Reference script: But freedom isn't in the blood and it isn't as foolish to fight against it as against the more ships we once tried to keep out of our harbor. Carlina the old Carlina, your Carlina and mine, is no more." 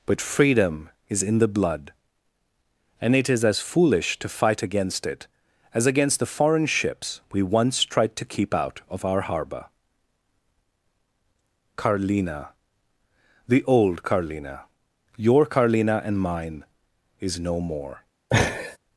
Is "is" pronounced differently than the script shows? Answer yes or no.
no